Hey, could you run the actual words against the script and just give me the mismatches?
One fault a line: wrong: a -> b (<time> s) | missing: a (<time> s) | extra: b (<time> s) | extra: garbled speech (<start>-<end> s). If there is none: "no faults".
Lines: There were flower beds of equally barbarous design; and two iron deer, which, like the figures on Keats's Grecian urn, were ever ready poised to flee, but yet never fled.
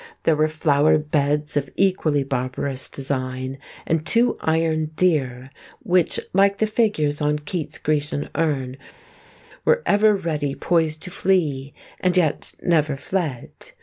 wrong: but -> and (12.0 s)